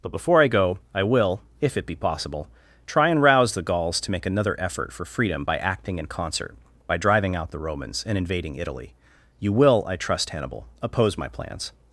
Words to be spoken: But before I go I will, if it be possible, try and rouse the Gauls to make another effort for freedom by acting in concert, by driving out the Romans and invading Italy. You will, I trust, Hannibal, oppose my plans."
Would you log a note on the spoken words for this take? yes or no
no